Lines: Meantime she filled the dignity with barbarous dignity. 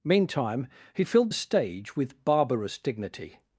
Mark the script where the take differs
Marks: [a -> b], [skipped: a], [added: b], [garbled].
Meantime [she -> he] filled the [dignity -> stage] with barbarous dignity.